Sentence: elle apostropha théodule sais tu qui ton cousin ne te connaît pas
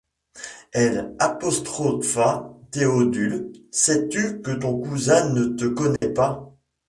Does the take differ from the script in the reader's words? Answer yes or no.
yes